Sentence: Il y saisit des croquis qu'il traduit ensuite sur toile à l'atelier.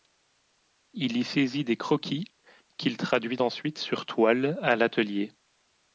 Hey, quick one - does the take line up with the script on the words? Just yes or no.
yes